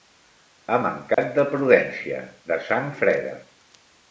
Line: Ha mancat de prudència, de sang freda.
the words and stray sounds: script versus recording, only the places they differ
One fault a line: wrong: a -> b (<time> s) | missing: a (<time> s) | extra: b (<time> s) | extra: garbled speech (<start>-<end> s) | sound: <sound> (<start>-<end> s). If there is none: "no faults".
sound: dropout (1.1-1.2 s)